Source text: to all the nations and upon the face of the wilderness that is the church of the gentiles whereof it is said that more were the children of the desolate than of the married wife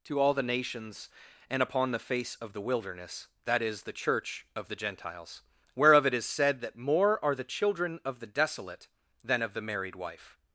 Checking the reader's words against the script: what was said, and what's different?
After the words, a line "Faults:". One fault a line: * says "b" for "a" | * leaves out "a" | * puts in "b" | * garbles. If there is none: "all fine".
to all the nations and upon the face of the wilderness that is the church of the gentiles whereof it is said that more are the children of the desolate than of the married wife
Faults:
* says "are" for "were"